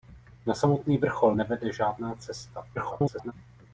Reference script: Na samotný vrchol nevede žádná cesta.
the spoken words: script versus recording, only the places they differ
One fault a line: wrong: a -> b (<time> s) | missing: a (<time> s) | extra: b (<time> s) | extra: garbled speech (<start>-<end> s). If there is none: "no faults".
extra: garbled speech (2.7-3.3 s)